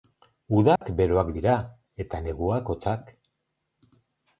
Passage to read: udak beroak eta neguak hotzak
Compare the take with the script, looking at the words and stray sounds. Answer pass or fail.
fail